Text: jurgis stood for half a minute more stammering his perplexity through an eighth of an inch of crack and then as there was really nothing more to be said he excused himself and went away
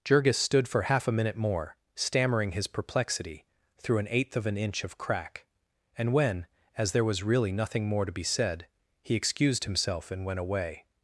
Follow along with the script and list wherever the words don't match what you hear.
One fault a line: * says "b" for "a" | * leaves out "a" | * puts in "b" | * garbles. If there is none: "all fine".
* says "when" for "then"